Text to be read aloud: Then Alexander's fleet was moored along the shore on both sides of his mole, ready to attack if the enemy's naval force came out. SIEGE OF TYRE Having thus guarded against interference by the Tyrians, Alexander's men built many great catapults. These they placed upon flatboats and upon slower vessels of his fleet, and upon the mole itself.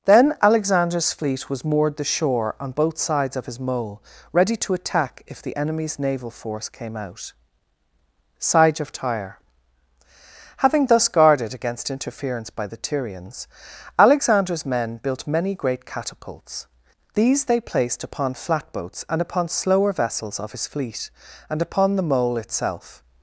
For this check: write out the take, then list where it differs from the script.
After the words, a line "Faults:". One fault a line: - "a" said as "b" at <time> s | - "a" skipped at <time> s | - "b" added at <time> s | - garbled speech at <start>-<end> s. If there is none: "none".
Then Alexander's fleet was moored the shore on both sides of his mole, ready to attack if the enemy's naval force came out. SIEGE OF TYRE Having thus guarded against interference by the Tyrians, Alexander's men built many great catapults. These they placed upon flatboats and upon slower vessels of his fleet, and upon the mole itself.
Faults:
- "along" skipped at 2.0 s